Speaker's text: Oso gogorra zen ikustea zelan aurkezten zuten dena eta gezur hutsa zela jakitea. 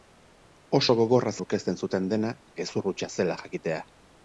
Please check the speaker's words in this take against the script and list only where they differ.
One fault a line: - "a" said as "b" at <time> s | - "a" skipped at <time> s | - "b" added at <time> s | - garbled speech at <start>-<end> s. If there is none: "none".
- "zen ikustea zelan" skipped at 1.3 s
- "eta" skipped at 2.4 s